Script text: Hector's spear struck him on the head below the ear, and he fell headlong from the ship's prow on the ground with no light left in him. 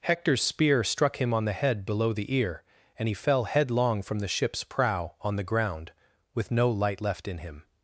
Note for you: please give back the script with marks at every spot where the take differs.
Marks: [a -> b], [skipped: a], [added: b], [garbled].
Hector's spear struck him on the head below the ear, and he fell headlong from the ship's prow on the ground with no light left in him.